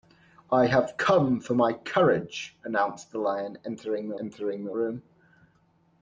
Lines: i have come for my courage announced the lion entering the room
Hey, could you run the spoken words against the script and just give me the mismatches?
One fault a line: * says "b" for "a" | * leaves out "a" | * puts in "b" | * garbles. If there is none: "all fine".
* puts in "entering the"